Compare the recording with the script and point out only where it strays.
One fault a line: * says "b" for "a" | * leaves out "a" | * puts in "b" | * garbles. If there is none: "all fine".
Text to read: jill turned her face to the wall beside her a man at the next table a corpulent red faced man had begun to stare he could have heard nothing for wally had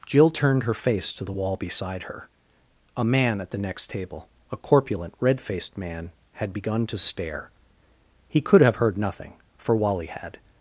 all fine